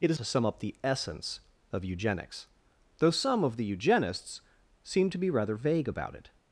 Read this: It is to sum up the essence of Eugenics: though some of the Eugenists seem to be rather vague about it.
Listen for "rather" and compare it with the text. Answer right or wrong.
right